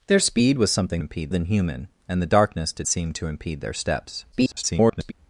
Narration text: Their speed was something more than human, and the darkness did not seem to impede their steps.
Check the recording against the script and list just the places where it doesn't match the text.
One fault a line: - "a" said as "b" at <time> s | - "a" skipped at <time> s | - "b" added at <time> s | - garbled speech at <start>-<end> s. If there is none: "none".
- "more" said as "impede" at 1.0 s
- "not" skipped at 2.9 s
- garbled speech at 4.3-5.1 s